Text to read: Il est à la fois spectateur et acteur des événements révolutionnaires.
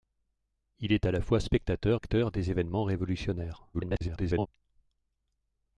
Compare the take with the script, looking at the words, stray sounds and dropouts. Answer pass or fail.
fail